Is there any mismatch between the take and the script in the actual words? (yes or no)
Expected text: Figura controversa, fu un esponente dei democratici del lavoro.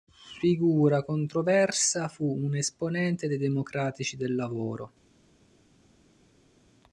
no